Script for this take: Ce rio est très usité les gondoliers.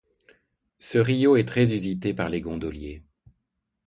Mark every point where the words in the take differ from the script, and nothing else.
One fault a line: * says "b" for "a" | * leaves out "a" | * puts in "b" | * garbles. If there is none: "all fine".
* puts in "par"